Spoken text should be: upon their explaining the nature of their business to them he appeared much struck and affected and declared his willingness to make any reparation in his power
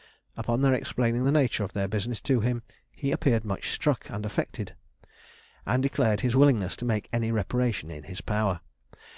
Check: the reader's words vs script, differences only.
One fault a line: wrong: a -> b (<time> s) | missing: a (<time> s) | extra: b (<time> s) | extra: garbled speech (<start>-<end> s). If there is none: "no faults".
wrong: them -> him (2.4 s)